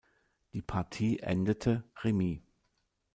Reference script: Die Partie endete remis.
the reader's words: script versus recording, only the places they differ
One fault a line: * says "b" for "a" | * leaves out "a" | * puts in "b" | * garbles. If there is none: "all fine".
all fine